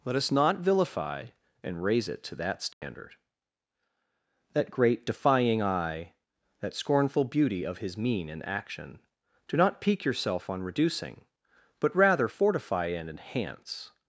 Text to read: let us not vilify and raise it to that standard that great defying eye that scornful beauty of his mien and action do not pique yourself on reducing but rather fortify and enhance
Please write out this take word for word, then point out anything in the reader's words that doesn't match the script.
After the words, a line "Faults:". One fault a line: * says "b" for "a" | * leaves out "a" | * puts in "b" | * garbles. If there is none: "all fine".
let us not vilify and raise it to that standard that great defying eye that scornful beauty of his mien and action do not pique yourself on reducing but rather fortify and enhance
Faults:
all fine